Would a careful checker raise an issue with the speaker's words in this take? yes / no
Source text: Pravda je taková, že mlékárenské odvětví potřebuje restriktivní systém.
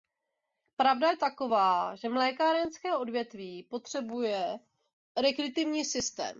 no